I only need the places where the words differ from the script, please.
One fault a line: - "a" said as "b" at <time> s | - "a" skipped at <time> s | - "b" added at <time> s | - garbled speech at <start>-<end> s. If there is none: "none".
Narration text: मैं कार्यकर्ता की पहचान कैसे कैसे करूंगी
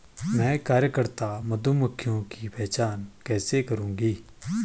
- "मधुमक्खियों" added at 1.4 s
- "कैसे" skipped at 3.6 s